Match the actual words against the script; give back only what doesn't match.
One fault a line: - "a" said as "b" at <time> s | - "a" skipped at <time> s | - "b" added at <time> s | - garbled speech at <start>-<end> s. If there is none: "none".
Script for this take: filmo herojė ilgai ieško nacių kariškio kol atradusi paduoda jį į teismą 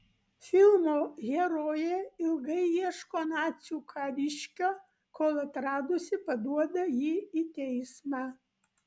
none